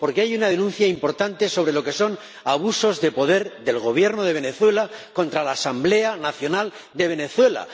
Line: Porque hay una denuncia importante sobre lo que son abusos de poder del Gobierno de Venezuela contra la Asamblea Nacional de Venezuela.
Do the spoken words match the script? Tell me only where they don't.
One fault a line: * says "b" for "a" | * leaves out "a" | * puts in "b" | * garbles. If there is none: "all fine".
all fine